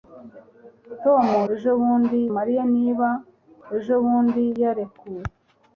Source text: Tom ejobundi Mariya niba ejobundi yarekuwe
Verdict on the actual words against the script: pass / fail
pass